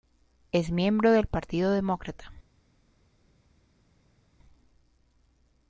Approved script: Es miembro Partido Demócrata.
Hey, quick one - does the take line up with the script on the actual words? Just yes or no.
no